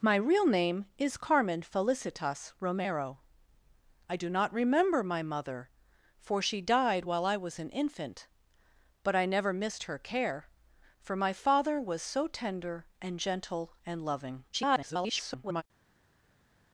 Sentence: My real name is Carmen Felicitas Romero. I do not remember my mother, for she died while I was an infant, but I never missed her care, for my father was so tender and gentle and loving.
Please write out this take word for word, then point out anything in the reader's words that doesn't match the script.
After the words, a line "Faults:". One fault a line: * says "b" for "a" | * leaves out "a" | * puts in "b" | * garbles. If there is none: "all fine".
My real name is Carmen Felicitas Romero. I do not remember my mother, for she died while I was an infant, but I never missed her care, for my father was so tender and gentle and loving. [garbled]
Faults:
* garbles